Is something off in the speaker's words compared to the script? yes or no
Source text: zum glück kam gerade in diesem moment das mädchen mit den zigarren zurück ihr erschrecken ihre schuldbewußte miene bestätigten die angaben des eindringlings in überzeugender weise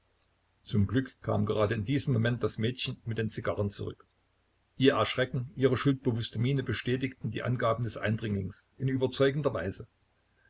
no